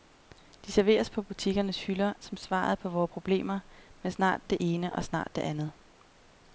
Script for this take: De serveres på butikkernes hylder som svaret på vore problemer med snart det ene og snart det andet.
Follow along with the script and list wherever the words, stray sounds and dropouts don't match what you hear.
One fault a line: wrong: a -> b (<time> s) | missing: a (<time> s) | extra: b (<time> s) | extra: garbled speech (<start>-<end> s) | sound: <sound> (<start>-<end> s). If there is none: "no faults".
no faults